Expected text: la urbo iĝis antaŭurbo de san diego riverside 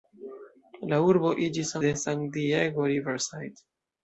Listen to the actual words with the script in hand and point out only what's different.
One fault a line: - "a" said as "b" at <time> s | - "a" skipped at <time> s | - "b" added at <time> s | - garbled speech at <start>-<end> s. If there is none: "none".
- "antaŭurbo" skipped at 1.8 s